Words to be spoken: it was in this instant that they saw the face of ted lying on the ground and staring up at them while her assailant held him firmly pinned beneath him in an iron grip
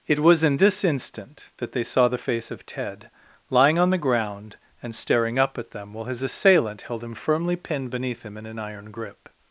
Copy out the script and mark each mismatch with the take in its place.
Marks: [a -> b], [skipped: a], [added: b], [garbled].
it was in this instant that they saw the face of ted lying on the ground and staring up at them while [her -> his] assailant held him firmly pinned beneath him in an iron grip